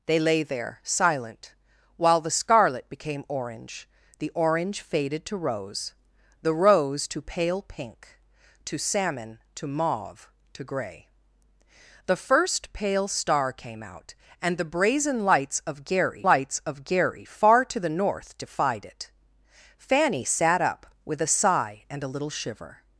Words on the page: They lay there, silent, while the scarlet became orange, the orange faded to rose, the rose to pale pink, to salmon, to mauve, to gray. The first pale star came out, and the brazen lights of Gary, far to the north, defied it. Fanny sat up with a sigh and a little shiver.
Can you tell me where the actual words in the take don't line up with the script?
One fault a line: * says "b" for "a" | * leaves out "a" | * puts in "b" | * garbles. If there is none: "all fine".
* puts in "lights of Gary"